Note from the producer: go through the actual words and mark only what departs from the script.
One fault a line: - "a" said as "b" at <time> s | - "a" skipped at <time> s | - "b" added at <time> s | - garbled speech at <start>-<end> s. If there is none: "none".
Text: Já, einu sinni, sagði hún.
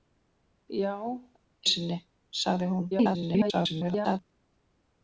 - "einu" skipped at 0.9 s
- garbled speech at 2.9-4.2 s